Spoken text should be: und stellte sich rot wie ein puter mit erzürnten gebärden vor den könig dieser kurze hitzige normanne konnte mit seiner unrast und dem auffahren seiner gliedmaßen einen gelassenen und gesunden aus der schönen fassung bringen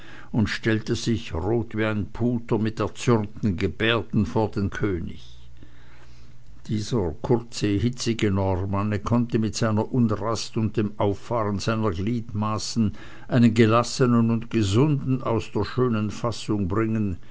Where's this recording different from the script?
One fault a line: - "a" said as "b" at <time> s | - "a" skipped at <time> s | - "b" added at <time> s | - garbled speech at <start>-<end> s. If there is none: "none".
none